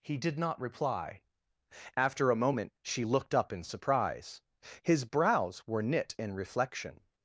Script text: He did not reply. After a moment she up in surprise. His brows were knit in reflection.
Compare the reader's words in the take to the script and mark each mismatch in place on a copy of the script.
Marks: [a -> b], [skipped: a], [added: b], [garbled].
He did not reply. After a moment she [added: looked] up in surprise. His brows were knit in reflection.